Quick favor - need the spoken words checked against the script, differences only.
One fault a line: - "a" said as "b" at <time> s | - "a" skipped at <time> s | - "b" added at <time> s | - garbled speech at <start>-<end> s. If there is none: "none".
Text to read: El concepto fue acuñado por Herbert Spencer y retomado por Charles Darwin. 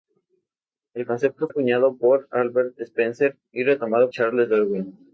- "fue" skipped at 1.5 s
- "por" skipped at 4.1 s